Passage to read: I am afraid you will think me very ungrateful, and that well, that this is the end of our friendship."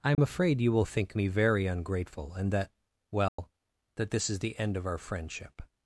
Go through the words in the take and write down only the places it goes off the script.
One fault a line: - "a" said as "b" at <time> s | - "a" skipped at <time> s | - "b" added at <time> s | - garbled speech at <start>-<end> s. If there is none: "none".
none